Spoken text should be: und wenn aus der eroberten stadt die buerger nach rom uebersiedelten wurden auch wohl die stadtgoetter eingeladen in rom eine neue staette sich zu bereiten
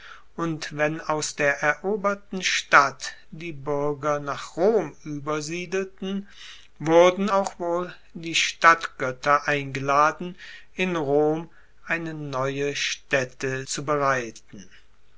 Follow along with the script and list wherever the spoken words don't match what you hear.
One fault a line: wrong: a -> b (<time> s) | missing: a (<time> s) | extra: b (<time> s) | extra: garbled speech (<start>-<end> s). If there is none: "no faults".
missing: sich (13.7 s)